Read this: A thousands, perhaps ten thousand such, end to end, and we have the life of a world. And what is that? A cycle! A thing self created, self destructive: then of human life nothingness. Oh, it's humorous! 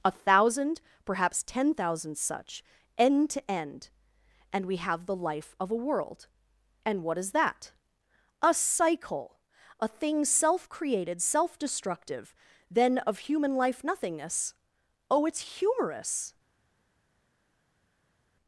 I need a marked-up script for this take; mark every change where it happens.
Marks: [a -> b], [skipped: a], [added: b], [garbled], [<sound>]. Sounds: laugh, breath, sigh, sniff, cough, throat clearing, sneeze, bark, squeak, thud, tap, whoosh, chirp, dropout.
A [thousands, -> thousand] perhaps ten thousand such, end to end, and we have the life of a world. And what is that? A cycle! A thing self created, self destructive: then of human life nothingness. Oh, it's humorous!